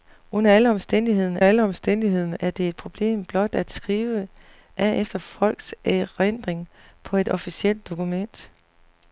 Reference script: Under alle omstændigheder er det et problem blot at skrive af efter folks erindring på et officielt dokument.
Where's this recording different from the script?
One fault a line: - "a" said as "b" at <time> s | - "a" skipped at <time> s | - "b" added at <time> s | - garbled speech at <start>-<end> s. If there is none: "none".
- "alle omstændigheder" added at 1.4 s